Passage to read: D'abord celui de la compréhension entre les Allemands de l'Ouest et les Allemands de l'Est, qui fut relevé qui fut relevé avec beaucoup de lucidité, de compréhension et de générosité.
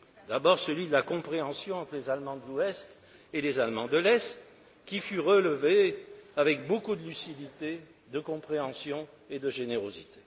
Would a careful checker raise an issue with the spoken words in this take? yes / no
yes